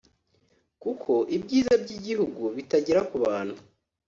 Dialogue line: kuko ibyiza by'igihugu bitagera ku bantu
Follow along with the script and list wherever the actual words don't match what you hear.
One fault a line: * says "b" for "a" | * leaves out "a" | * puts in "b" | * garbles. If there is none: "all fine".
all fine